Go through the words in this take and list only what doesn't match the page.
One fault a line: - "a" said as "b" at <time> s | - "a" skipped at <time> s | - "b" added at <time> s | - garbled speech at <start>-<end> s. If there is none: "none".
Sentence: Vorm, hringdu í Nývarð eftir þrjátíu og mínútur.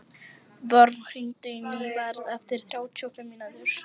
- "fimm" added at 3.2 s